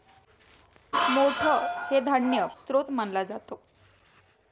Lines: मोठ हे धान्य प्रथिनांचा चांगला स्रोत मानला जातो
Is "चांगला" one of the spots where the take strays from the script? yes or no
yes